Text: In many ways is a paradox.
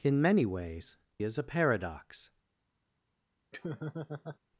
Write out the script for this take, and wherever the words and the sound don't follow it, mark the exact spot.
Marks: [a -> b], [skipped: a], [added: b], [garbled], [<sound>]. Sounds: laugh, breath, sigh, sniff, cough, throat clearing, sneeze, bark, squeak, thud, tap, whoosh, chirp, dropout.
In many ways is a paradox. [laugh]